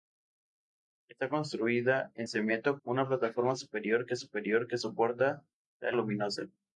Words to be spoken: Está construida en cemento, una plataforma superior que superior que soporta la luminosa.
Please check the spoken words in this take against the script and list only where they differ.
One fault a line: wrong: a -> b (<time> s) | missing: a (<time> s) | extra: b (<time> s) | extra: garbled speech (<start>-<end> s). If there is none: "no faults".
no faults